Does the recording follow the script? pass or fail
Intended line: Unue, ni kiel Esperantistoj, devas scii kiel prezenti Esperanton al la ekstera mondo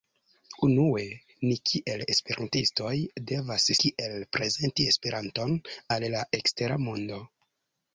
fail